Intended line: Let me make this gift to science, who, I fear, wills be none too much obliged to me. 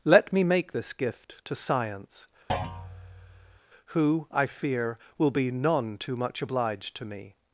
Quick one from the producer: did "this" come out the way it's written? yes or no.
yes